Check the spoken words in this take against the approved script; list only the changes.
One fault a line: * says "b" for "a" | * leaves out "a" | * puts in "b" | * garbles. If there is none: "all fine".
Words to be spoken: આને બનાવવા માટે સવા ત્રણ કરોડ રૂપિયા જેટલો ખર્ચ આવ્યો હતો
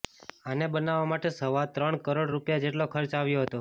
all fine